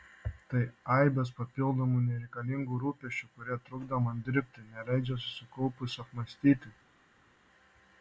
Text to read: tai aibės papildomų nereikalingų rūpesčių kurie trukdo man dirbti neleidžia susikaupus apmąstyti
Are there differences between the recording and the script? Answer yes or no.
no